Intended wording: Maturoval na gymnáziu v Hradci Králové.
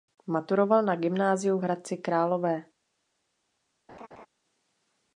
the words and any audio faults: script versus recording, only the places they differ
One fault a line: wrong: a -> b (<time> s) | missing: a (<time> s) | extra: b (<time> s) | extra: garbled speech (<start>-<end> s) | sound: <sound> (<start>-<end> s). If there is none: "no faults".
sound: laugh (3.9-4.3 s)